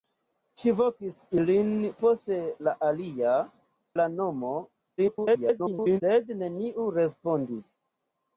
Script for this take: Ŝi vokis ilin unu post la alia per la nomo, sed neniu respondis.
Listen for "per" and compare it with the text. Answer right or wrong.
wrong